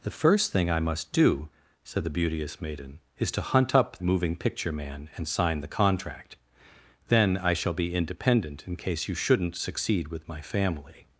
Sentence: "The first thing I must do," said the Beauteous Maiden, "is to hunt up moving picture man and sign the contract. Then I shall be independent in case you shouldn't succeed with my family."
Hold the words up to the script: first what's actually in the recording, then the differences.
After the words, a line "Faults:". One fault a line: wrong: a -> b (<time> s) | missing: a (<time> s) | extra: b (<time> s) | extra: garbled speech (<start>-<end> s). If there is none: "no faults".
"The first thing I must do," said the Beauteous Maiden, "is to hunt up moving picture man and sign the contract. Then I shall be independent in case you shouldn't succeed with my family."
Faults:
no faults